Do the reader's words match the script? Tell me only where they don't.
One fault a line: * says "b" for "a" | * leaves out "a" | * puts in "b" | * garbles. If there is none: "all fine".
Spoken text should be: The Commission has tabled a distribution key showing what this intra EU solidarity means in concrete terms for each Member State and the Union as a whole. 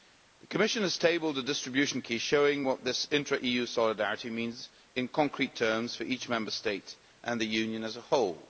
all fine